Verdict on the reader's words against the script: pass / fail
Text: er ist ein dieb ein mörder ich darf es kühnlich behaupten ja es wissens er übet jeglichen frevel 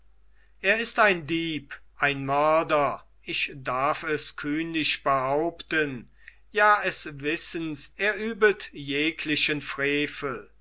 pass